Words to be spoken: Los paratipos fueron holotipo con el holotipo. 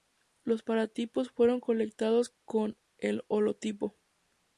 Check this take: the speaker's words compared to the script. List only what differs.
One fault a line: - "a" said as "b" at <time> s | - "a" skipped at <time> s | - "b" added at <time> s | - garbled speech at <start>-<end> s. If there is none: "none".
- "holotipo" said as "colectados" at 1.6 s